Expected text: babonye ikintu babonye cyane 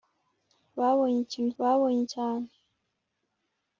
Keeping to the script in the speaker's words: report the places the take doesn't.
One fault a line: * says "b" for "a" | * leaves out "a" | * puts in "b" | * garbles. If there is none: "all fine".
all fine